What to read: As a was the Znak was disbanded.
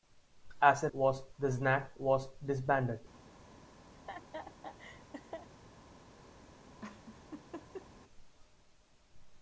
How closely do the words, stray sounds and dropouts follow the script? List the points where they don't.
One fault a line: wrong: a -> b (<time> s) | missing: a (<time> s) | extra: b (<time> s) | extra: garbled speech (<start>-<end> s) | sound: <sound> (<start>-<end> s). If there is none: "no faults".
sound: laugh (3.9-5.5 s)
sound: laugh (6.8-7.9 s)